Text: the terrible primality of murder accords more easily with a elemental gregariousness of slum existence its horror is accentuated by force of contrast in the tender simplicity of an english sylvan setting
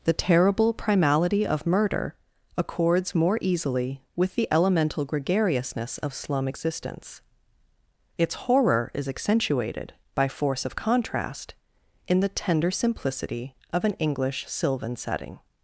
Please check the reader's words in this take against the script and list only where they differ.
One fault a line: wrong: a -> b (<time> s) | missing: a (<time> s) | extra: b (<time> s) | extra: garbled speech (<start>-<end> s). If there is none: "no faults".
wrong: a -> the (4.3 s)